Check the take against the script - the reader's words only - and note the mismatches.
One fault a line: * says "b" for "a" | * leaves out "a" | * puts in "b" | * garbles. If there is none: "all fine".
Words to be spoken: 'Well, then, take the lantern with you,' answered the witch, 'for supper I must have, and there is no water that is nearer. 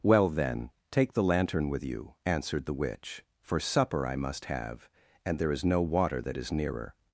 all fine